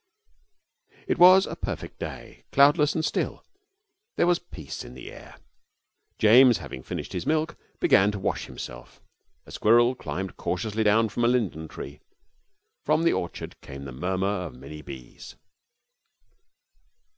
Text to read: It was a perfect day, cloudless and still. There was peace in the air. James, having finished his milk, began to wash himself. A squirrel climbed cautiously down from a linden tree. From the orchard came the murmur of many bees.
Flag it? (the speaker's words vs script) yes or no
no